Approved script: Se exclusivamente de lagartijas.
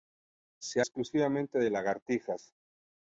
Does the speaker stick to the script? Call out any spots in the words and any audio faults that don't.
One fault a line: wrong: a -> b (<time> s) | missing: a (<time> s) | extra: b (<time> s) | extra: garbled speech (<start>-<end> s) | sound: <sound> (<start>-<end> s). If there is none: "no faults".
no faults